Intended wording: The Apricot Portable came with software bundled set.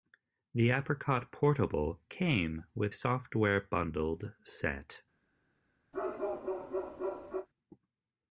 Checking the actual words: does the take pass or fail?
pass